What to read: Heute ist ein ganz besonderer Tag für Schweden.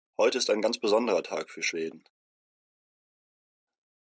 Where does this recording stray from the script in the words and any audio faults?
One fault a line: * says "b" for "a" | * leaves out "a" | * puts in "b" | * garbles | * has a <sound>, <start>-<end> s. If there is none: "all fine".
all fine